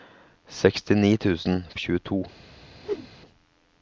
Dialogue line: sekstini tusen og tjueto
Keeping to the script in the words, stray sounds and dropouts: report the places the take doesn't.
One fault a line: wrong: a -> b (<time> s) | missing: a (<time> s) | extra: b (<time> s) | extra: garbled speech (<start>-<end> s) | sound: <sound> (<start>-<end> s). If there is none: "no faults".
sound: whoosh (2.8-3.1 s)